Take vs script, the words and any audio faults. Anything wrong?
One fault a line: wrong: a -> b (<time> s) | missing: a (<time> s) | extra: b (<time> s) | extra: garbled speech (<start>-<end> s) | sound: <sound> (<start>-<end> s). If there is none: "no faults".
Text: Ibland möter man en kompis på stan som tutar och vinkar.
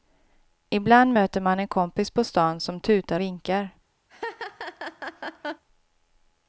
missing: och (3.2 s)
sound: laugh (4.1-5.6 s)